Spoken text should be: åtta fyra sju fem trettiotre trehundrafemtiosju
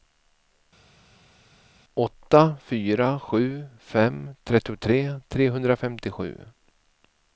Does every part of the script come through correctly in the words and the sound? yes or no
yes